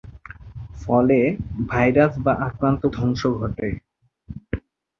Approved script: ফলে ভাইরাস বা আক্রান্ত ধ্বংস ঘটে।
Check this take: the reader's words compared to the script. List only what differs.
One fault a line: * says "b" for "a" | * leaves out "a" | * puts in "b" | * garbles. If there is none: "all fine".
all fine